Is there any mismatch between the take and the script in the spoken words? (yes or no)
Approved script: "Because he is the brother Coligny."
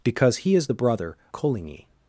no